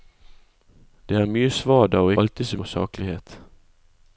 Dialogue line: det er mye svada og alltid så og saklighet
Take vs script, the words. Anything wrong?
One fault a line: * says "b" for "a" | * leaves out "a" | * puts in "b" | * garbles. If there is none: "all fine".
all fine